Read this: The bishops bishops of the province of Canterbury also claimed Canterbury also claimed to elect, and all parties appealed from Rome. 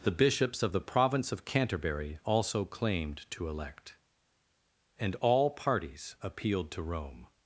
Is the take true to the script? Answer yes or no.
no